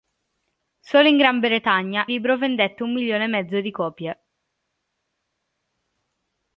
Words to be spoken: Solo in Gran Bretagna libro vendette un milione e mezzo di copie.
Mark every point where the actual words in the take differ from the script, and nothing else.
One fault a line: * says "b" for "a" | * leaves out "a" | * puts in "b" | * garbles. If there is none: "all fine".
all fine